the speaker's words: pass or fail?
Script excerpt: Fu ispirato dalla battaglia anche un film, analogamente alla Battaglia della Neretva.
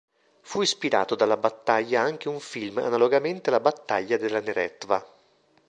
pass